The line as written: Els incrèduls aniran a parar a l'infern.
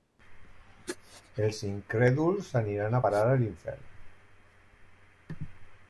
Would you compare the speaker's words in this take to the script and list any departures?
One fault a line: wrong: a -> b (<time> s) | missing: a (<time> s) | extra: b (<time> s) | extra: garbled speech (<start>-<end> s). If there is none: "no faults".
no faults